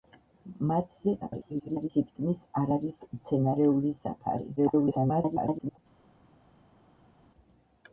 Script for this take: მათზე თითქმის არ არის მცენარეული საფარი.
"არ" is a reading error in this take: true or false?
false